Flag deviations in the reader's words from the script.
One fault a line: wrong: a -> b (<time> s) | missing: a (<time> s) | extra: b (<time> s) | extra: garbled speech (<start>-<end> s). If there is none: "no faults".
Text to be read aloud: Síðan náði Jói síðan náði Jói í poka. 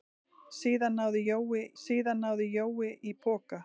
no faults